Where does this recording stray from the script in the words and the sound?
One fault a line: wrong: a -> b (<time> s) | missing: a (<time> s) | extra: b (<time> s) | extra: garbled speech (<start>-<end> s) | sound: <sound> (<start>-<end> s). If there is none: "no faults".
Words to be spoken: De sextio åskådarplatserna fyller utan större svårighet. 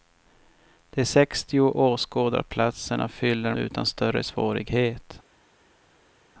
no faults